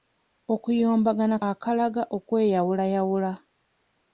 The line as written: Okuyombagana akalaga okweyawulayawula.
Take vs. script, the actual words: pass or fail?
pass